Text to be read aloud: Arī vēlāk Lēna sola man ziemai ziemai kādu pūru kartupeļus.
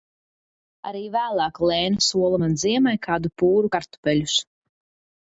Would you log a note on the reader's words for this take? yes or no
yes